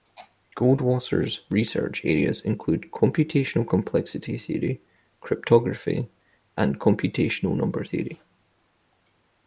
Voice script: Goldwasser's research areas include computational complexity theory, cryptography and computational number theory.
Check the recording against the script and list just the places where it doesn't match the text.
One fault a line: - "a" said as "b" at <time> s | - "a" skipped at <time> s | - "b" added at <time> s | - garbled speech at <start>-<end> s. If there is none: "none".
none